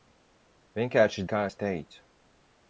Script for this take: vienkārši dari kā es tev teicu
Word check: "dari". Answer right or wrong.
wrong